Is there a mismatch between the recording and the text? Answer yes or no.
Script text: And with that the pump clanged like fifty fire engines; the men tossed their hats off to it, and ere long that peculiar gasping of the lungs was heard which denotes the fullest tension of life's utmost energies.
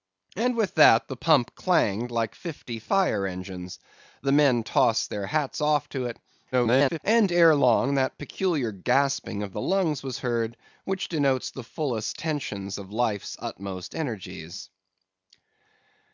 yes